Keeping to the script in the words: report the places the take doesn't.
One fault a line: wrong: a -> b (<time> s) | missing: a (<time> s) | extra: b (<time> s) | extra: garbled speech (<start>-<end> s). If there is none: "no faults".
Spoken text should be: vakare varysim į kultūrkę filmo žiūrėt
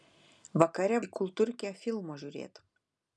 missing: varysim (1.0 s)